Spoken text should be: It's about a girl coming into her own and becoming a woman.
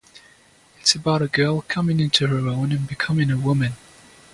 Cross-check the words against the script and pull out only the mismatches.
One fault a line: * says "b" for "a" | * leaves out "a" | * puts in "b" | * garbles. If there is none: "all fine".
all fine